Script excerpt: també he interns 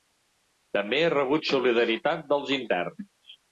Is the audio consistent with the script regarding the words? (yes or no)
no